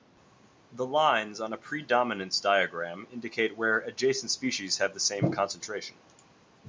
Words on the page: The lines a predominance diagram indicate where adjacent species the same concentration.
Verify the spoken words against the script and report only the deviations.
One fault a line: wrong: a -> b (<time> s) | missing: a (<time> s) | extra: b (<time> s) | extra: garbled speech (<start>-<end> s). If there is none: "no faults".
extra: on (1.4 s)
extra: have (4.8 s)